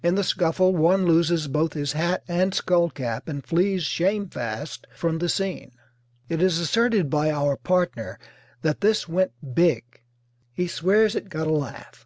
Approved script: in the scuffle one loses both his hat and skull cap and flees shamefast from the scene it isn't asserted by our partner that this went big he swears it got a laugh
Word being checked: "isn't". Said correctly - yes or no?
no